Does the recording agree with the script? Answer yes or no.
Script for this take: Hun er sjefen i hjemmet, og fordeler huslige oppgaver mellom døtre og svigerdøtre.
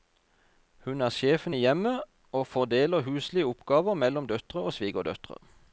yes